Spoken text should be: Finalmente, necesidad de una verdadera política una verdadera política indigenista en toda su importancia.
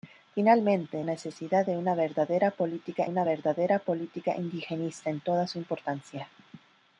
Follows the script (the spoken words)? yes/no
yes